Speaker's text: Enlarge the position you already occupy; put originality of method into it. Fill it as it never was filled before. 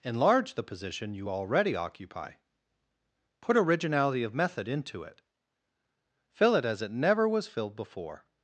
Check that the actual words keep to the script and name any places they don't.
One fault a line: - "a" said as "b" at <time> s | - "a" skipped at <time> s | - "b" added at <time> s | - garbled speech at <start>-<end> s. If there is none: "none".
none